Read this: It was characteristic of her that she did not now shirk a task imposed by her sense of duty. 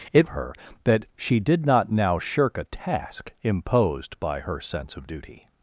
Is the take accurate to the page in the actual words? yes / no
no